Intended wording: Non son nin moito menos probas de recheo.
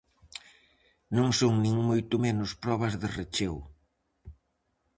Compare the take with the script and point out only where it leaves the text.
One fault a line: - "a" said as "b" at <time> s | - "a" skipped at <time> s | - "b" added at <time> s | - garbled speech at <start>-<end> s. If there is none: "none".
none